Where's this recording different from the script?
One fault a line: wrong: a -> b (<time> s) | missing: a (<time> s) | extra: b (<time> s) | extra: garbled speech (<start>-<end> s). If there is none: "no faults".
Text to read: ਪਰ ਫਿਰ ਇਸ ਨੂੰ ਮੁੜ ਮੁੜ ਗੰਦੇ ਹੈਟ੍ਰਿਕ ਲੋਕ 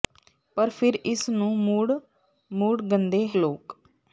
missing: ਹੈਟ੍ਰਿਕ (3.3 s)